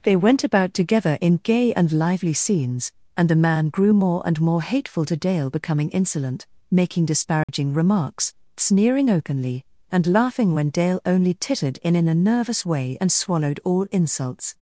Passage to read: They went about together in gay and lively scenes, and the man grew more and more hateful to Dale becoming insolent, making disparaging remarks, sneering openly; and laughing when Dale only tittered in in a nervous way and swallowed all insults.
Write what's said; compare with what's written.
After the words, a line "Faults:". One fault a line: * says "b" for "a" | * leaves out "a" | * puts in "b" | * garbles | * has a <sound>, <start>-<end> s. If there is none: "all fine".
They went about together in gay and lively scenes, and the man grew more and more hateful to Dale becoming insolent, making disparaging remarks, sneering openly; and laughing when Dale only tittered in in a nervous way and swallowed all insults.
Faults:
* has a dropout, 7.4-7.5 s